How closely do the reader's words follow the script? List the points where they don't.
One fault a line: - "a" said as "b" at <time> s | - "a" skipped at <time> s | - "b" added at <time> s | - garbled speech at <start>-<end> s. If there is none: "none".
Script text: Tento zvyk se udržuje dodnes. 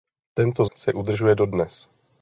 - "zvyk" skipped at 0.7 s